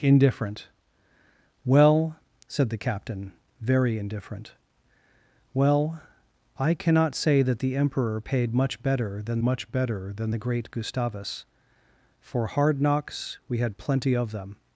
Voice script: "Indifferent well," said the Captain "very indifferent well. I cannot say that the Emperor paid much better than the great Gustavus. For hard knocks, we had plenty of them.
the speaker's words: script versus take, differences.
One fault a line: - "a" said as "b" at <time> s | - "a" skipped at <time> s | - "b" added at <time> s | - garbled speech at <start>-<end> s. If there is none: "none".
- "much better than" added at 9.4 s